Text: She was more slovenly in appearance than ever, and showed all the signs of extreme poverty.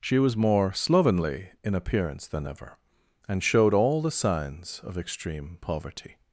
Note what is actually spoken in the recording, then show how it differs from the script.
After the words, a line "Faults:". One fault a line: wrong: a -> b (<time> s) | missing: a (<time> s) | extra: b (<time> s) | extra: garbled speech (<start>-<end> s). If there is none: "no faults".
She was more slovenly in appearance than ever, and showed all the signs of extreme poverty.
Faults:
no faults